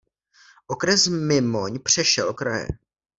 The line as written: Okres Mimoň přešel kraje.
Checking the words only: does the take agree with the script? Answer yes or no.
yes